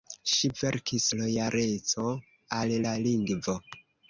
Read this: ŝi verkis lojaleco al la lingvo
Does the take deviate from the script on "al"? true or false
false